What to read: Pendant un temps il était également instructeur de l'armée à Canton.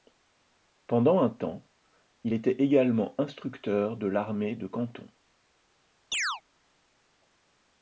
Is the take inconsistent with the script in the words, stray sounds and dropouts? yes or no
yes